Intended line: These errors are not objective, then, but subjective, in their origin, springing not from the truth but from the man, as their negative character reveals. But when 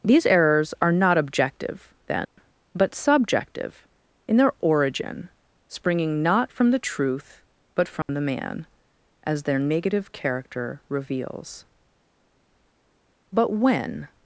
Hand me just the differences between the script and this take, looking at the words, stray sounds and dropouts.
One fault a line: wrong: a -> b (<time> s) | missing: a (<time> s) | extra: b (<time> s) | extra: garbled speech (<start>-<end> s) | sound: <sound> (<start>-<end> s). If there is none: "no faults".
sound: dropout (2.2-2.4 s)
sound: dropout (8.0-8.1 s)